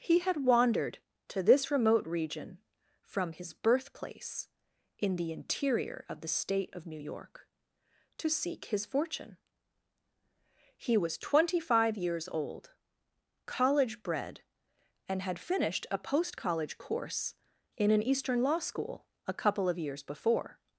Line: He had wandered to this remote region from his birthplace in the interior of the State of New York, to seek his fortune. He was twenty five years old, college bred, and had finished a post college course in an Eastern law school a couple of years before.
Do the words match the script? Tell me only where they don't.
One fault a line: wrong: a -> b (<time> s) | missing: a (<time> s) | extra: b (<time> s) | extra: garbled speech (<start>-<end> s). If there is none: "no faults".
no faults